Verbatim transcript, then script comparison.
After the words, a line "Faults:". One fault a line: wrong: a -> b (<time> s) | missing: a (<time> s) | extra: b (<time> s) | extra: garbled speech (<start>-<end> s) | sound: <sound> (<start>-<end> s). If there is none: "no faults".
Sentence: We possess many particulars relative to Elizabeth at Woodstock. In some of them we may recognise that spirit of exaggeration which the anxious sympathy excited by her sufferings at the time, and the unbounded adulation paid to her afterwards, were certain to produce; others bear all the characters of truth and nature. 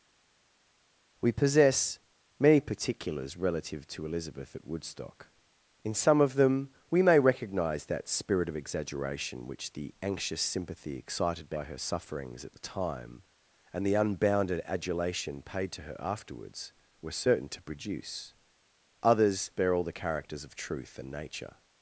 We possess many particulars relative to Elizabeth at Woodstock. In some of them we may recognise that spirit of exaggeration which the anxious sympathy excited by her sufferings at the time, and the unbounded adulation paid to her afterwards, were certain to produce; others bear all the characters of truth and nature.
Faults:
no faults